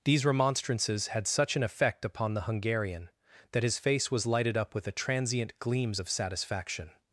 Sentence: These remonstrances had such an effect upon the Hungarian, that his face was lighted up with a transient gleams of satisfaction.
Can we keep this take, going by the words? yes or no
yes